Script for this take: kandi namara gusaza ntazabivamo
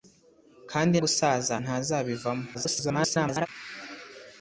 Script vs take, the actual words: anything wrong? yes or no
yes